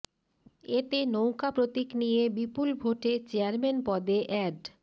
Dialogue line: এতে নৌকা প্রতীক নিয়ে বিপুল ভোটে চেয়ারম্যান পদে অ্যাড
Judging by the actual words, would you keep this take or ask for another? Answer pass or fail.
pass